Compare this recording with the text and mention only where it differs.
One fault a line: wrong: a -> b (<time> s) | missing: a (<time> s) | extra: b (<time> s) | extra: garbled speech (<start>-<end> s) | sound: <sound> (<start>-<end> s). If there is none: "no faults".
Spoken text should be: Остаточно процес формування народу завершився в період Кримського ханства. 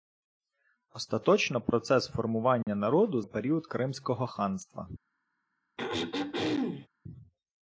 sound: dropout (2.6-2.7 s)
missing: завершився (3.2 s)
sound: throat clearing (5.8-6.9 s)